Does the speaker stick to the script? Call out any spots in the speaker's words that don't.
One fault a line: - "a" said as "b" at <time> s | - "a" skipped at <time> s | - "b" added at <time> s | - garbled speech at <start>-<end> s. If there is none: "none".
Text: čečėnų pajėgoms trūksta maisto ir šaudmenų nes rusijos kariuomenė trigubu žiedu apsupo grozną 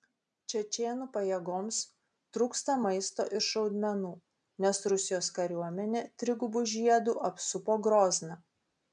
none